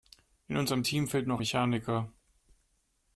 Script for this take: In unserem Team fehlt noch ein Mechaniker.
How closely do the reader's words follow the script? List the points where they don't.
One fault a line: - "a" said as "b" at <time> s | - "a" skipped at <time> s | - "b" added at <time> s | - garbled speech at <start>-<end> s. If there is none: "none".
- "ein" skipped at 1.4 s